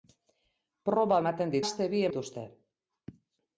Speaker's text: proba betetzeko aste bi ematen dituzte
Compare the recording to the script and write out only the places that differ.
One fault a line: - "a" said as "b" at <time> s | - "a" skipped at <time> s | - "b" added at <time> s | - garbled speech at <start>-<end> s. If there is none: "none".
- "betetzeko" said as "ematen" at 1.2 s
- "ematen" skipped at 2.1 s